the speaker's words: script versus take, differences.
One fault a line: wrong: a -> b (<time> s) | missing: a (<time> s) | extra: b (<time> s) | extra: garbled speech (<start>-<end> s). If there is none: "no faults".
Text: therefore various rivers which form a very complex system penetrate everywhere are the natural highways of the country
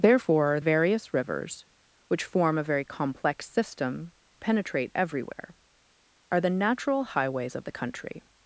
no faults